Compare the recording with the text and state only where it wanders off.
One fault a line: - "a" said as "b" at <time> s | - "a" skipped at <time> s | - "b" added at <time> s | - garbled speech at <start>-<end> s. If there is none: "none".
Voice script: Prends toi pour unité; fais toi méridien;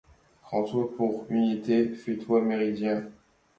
none